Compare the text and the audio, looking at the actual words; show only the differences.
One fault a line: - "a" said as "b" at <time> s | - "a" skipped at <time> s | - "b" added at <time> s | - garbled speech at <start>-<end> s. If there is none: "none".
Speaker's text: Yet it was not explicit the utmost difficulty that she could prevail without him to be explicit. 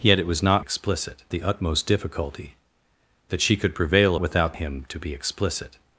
none